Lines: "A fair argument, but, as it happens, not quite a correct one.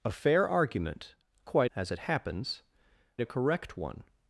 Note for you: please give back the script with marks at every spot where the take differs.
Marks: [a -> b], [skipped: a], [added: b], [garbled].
"A fair argument, [but, -> quite] as it happens, [skipped: not quite] a correct one.